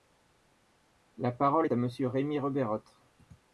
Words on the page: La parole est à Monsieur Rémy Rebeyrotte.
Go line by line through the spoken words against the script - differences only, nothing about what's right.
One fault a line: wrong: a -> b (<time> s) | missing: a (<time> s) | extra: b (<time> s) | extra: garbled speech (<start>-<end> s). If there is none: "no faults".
no faults